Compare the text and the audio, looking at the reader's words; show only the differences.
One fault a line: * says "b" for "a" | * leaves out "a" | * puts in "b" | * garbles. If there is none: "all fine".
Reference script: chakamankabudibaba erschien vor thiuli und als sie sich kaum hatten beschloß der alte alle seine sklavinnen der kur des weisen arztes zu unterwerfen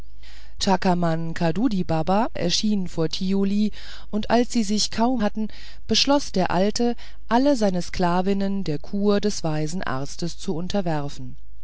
all fine